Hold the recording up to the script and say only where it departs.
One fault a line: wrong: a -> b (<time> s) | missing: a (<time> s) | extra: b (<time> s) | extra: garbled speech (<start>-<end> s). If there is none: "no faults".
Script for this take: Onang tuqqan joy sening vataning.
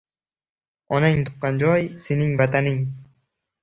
no faults